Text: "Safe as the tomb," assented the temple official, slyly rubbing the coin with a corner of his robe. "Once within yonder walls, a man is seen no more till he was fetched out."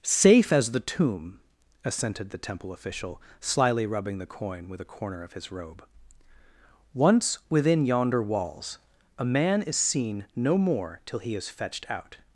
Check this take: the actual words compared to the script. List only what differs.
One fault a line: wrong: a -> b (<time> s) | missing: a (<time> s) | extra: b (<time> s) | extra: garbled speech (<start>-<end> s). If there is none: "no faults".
wrong: was -> is (11.3 s)